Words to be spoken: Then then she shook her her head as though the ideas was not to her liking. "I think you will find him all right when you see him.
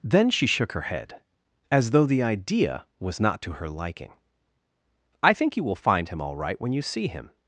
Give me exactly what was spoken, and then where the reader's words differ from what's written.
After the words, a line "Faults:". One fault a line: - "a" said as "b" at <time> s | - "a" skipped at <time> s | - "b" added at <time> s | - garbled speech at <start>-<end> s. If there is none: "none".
Then she shook her head as though the idea was not to her liking. "I think you will find him all right when you see him.
Faults:
- "then" skipped at 0.3 s
- "her" skipped at 0.9 s
- "ideas" said as "idea" at 2.2 s